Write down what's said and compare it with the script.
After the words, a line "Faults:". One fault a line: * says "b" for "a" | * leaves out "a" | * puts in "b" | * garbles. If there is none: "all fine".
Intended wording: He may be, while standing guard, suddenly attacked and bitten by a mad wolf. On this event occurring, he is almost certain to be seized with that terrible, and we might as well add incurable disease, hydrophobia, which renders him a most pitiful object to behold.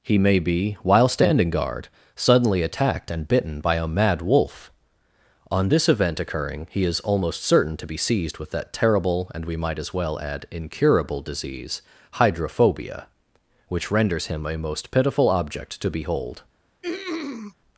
He may be, while standing guard, suddenly attacked and bitten by a mad wolf. On this event occurring, he is almost certain to be seized with that terrible, and we might as well add incurable disease, hydrophobia, which renders him a most pitiful object to behold.
Faults:
all fine